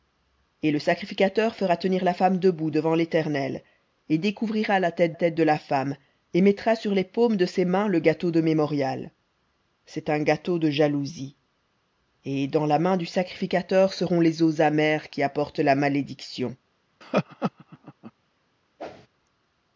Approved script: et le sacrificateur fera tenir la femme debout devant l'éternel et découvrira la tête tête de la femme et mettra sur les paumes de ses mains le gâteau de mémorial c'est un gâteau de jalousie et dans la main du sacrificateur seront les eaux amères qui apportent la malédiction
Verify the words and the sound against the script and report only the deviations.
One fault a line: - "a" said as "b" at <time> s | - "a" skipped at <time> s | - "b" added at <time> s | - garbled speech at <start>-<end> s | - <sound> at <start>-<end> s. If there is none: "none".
- laugh at 17.0-18.1 s
- whoosh at 18.8-19.1 s